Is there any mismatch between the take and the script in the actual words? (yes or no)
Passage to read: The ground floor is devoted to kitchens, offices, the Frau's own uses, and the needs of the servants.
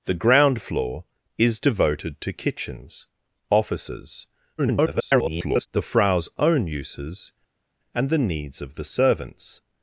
yes